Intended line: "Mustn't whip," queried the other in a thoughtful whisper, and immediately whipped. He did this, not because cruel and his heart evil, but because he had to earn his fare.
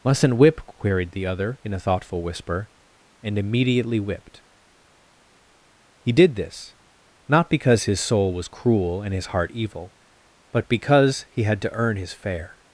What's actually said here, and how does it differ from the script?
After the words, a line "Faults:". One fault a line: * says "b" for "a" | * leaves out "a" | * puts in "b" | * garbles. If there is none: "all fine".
"Mustn't whip," queried the other in a thoughtful whisper, and immediately whipped. He did this, not because his soul was cruel and his heart evil, but because he had to earn his fare.
Faults:
* puts in "his soul was"